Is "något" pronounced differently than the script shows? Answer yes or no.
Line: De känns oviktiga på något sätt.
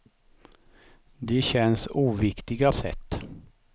yes